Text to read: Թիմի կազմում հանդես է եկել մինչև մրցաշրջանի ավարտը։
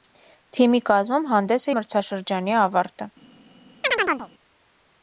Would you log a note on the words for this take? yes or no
yes